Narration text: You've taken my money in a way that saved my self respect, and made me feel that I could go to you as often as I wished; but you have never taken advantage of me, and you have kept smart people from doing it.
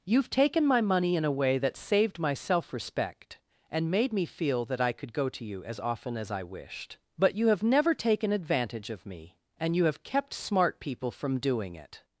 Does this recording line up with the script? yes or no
yes